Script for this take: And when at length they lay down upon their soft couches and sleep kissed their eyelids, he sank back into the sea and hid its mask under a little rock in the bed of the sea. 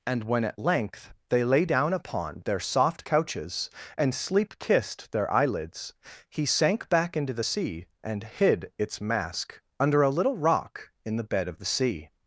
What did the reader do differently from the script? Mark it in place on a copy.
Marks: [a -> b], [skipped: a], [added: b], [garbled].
And when at length they lay down upon their soft couches and sleep kissed their eyelids, he sank back into the sea and hid its mask under a little rock in the bed of the sea.